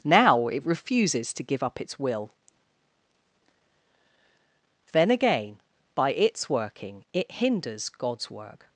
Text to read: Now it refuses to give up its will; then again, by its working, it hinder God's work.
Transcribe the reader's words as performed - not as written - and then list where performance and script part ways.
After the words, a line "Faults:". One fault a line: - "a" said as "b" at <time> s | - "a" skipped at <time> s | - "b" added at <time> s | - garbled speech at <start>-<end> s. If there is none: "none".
Now it refuses to give up its will; then again, by its working, it hinders God's work.
Faults:
- "hinder" said as "hinders" at 7.3 s